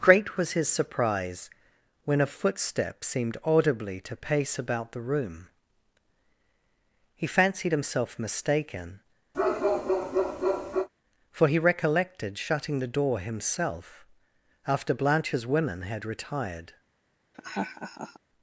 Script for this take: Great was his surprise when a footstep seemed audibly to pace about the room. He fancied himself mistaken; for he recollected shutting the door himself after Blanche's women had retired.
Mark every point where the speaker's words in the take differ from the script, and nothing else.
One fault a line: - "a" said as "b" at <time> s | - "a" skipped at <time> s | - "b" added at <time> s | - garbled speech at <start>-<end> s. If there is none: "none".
none